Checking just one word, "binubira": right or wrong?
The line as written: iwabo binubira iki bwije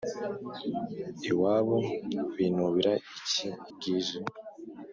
right